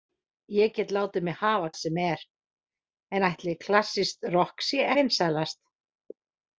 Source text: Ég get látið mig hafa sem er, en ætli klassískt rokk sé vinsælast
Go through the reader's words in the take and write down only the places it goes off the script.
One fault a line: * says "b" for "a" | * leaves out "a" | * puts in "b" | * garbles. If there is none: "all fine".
all fine